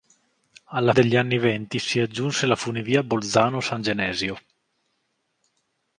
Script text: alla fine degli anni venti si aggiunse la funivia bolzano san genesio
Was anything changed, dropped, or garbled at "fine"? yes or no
yes